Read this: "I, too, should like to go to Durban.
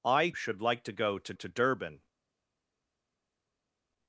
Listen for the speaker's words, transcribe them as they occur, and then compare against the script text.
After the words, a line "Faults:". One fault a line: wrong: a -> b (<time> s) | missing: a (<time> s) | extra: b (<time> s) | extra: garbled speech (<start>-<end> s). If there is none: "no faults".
"I, should like to go to to Durban.
Faults:
missing: too (0.3 s)
extra: to (1.3 s)